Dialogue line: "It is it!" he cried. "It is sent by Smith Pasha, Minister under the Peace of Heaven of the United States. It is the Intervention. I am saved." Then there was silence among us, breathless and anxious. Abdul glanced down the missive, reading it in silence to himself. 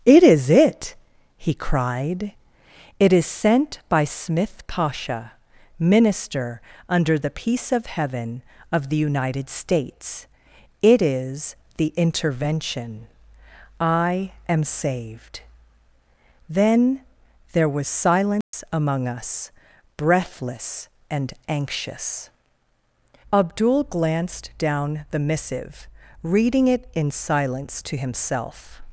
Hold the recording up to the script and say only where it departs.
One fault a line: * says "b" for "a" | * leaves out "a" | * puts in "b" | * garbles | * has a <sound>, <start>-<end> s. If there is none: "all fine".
* has a dropout, 18.4-18.5 s